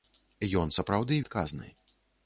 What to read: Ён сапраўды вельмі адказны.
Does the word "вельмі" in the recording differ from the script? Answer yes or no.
yes